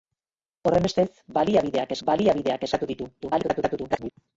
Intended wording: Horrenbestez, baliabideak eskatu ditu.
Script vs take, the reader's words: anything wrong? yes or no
yes